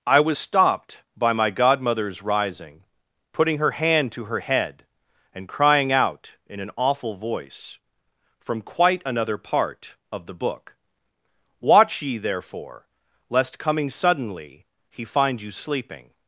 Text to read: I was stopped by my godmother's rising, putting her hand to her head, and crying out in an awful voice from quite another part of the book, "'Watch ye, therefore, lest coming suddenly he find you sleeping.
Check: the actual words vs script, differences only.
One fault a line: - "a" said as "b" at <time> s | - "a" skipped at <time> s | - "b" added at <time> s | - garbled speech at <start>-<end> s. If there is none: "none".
none